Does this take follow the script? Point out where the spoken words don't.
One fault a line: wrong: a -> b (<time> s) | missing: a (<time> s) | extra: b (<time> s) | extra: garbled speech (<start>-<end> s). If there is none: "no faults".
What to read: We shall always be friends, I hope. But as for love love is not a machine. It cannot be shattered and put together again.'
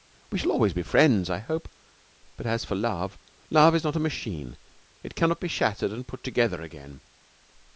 no faults